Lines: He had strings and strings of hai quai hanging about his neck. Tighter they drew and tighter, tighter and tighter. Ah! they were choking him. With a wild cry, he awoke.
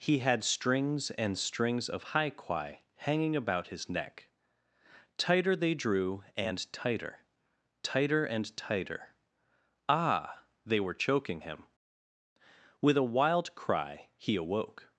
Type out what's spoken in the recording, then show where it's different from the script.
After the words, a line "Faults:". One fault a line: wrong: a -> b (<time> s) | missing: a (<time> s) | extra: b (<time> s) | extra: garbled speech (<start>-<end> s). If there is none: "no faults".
He had strings and strings of hai quai hanging about his neck. Tighter they drew and tighter, tighter and tighter. Ah! they were choking him. With a wild cry, he awoke.
Faults:
no faults